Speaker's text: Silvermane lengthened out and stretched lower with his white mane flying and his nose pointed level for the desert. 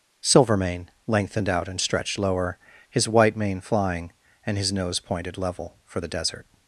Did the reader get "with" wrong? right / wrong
wrong